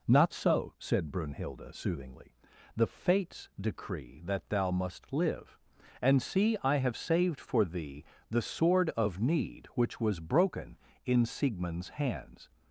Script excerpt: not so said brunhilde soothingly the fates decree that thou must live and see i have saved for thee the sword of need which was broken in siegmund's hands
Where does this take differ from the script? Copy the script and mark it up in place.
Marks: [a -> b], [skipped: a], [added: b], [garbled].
not so said brunhilde soothingly the fates decree that thou must live and see i have saved for thee the sword of need which was broken in siegmund's hands